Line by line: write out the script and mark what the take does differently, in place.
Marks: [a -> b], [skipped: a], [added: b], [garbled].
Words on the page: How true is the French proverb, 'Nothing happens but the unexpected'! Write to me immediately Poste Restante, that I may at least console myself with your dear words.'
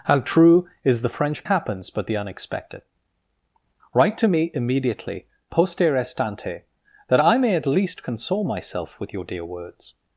How true is the French [skipped: proverb, 'Nothing] happens but the unexpected'! Write to me immediately Poste Restante, that I may at least console myself with your dear words.'